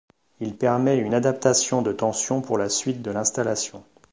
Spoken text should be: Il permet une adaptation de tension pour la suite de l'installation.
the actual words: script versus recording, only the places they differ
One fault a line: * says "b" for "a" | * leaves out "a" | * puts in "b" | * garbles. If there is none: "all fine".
all fine